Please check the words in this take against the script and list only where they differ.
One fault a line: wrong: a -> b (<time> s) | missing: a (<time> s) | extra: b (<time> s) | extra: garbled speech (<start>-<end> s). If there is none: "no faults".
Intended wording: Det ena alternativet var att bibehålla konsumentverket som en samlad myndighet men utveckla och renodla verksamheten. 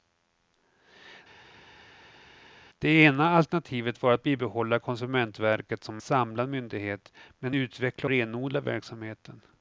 missing: en (6.0 s)
missing: och (8.1 s)